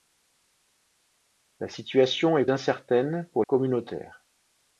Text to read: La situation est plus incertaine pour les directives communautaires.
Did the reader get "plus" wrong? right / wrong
wrong